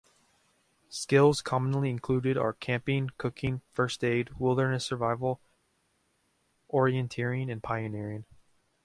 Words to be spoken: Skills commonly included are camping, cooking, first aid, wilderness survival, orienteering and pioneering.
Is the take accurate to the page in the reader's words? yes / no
yes